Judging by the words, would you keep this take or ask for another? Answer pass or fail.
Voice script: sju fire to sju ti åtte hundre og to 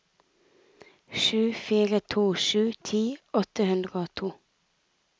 pass